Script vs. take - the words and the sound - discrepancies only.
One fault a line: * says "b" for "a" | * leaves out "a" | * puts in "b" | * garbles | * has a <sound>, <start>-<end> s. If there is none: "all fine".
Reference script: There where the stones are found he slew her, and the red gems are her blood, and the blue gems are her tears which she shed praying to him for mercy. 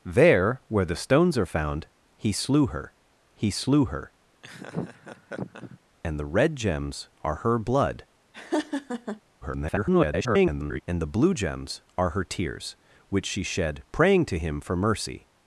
* puts in "he slew her"
* has a laugh, 4.4-5.8 s
* has a laugh, 8.3-9.2 s
* garbles